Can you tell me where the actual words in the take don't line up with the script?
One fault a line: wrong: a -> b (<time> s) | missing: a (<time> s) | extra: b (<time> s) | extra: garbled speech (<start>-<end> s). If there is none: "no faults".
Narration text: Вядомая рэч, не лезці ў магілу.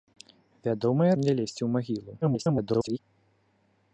missing: рэч (1.1 s)
extra: garbled speech (2.2-3.0 s)